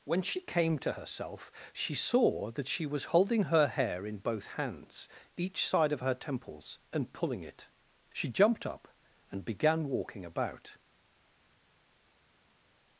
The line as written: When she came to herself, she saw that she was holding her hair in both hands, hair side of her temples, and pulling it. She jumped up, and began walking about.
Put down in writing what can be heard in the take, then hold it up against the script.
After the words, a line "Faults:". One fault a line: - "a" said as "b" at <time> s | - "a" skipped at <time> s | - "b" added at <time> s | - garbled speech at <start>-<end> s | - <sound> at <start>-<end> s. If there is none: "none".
When she came to herself, she saw that she was holding her hair in both hands, each side of her temples, and pulling it. She jumped up, and began walking about.
Faults:
- "hair" said as "each" at 5.4 s